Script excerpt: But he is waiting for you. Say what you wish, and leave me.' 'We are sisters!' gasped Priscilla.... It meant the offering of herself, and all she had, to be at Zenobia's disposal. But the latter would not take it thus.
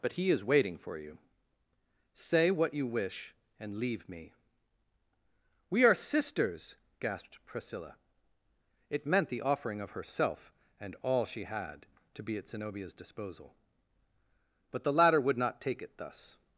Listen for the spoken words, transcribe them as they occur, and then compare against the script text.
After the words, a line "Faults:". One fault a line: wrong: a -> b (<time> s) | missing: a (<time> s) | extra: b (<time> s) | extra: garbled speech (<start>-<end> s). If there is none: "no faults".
But he is waiting for you. Say what you wish, and leave me.' 'We are sisters!' gasped Priscilla.... It meant the offering of herself, and all she had, to be at Zenobia's disposal. But the latter would not take it thus.
Faults:
no faults